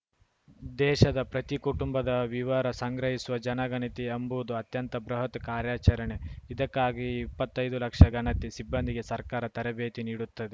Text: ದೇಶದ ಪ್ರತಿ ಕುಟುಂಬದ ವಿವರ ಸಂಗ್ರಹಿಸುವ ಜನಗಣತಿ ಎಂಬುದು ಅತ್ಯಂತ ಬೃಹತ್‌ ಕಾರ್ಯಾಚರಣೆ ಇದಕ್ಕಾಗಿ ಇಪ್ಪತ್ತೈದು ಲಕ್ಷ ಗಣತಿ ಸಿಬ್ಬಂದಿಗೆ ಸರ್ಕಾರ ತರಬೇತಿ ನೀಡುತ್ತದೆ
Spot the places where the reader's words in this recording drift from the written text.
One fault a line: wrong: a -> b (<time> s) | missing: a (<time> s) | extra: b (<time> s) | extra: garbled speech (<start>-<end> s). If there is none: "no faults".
no faults